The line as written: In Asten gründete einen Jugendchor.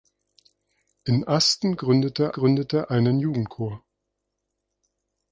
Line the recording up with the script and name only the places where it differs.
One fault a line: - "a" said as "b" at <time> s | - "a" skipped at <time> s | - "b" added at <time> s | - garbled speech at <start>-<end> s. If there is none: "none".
- "gründete" added at 2.3 s